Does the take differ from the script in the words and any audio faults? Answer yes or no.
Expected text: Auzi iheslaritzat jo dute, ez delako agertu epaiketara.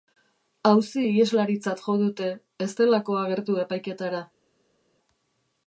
no